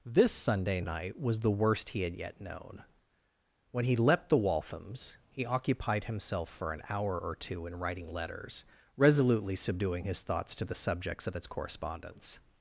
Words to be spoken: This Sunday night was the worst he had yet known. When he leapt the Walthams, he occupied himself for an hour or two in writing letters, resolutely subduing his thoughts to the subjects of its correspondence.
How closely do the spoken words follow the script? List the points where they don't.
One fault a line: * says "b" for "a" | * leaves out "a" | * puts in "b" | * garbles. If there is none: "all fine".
all fine